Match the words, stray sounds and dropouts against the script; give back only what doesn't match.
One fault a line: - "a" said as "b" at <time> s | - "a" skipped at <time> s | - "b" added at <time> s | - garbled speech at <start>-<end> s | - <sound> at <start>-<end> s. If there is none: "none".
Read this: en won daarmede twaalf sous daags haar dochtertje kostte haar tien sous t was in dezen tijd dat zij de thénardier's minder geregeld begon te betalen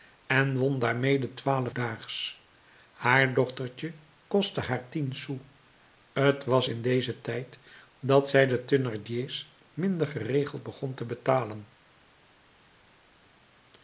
- "sous" skipped at 1.8 s